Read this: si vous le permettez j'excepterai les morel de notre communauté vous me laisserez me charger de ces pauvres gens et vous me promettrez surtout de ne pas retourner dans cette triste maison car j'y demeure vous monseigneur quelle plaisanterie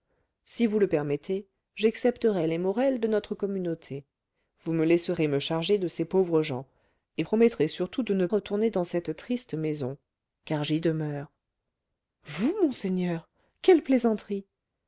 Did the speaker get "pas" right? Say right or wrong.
wrong